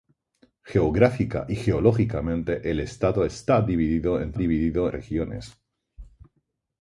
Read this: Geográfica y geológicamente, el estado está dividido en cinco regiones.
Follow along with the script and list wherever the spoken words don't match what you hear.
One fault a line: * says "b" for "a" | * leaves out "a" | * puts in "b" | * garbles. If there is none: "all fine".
* says "dividido" for "cinco"